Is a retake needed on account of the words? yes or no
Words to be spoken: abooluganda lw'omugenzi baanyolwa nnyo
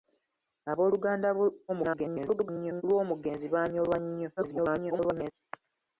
yes